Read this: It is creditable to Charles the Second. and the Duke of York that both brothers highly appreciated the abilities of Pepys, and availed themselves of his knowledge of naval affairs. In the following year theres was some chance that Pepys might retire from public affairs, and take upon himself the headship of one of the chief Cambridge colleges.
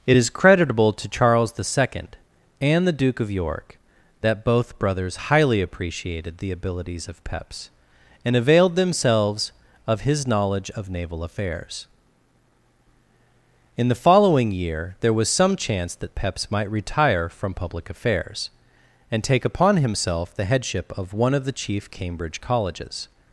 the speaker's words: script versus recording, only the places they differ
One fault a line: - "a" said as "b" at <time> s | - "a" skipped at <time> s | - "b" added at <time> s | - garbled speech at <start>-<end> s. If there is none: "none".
- "theres" said as "there" at 15.0 s